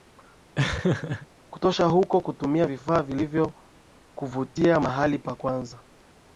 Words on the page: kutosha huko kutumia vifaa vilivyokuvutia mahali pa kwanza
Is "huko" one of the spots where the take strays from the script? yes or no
no